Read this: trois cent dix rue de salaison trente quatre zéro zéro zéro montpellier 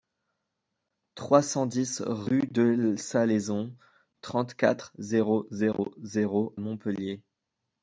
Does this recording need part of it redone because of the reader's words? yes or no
no